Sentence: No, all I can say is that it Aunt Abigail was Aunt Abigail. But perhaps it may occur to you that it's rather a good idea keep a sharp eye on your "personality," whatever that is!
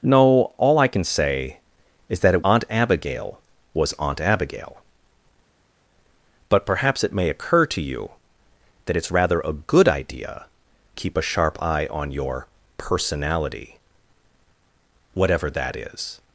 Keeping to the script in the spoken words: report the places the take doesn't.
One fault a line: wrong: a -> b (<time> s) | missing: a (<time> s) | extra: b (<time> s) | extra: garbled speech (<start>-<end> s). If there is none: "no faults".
no faults